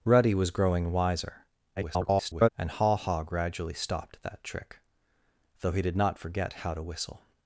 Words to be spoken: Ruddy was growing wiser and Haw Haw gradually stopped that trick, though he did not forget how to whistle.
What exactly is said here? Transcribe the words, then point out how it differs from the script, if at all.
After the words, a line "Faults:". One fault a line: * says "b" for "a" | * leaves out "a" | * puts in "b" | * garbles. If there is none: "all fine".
Ruddy was growing wiser [garbled] and Haw Haw gradually stopped that trick, though he did not forget how to whistle.
Faults:
* garbles